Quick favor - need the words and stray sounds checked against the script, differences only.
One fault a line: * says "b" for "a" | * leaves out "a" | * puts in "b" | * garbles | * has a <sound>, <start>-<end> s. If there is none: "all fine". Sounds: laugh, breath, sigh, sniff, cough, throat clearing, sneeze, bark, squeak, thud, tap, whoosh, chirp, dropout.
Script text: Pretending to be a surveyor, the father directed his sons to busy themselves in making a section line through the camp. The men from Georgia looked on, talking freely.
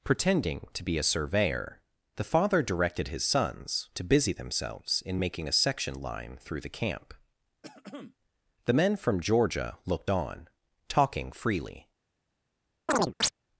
* has a throat clearing, 7.6-8.2 s
* has a chirp, 12.9-13.3 s